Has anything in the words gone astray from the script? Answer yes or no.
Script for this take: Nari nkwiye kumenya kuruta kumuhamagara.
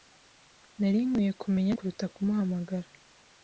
no